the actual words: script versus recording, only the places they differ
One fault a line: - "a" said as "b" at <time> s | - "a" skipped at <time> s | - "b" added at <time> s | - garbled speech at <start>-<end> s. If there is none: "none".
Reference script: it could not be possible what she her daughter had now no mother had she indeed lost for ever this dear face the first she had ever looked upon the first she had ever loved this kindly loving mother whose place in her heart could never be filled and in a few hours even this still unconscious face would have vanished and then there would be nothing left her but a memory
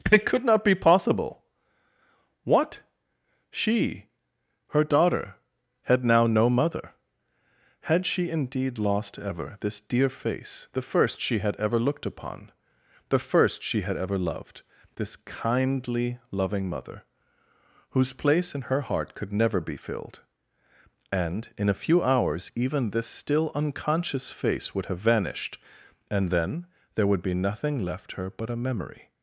- "for" skipped at 9.2 s